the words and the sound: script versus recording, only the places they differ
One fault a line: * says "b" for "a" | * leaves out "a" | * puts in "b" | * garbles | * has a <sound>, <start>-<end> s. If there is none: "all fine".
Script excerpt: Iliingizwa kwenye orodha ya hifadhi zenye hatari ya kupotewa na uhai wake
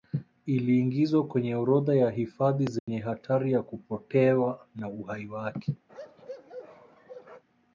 * has a dropout, 2.8-2.9 s
* has a bark, 5.9-7.4 s